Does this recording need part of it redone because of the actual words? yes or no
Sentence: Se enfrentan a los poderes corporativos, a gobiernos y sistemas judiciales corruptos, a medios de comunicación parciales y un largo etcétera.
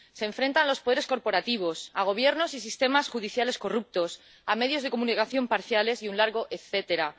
no